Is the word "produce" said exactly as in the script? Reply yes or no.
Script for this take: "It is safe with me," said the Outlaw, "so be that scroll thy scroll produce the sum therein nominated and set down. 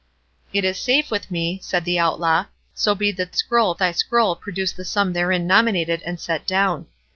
yes